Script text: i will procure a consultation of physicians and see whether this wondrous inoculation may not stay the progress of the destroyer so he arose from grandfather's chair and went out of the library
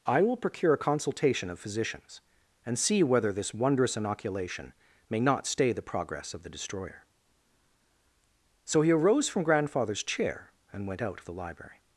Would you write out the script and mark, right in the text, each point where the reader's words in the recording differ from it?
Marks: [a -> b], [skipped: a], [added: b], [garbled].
i will procure a consultation of physicians and see whether this wondrous inoculation may not stay the progress of the destroyer so he arose from grandfather's chair and went out of the library